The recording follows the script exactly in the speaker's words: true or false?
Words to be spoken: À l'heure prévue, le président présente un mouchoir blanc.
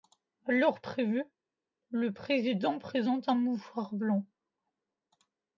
true